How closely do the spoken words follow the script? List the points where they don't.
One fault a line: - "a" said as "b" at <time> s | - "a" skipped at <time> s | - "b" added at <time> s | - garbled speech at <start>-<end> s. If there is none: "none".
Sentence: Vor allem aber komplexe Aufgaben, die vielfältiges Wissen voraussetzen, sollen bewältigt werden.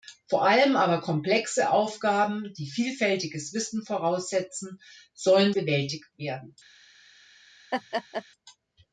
none